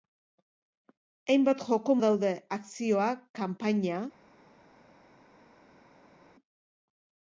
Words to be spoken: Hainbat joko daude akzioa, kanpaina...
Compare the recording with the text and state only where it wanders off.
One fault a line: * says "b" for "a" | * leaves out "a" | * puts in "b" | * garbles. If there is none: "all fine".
all fine